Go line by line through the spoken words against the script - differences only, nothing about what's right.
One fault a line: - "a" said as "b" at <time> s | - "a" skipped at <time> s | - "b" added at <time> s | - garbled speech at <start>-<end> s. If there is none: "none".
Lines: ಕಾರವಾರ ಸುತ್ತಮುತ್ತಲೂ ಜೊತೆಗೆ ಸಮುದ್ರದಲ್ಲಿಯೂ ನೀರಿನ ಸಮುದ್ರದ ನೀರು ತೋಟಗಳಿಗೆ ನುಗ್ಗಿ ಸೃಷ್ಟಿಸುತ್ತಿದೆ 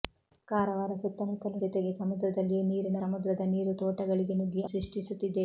none